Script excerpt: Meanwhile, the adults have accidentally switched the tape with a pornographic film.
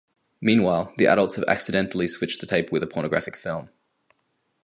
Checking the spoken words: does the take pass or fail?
pass